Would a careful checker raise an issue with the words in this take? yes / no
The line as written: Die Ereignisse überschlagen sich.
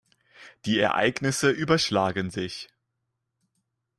no